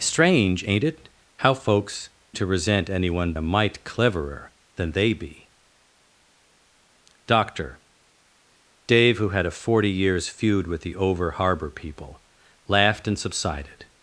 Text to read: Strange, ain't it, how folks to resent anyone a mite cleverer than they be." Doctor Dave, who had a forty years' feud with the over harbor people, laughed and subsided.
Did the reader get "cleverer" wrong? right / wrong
right